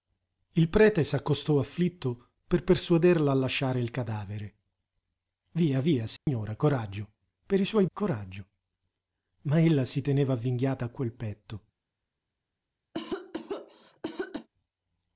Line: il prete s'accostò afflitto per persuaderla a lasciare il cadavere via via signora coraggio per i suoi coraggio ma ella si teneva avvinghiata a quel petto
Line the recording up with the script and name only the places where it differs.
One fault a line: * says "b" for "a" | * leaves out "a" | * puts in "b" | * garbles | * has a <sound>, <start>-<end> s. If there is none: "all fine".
* has a dropout, 6.2-6.3 s
* has a cough, 12.9-14.5 s